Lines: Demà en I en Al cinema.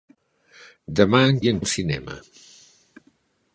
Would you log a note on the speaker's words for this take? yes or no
no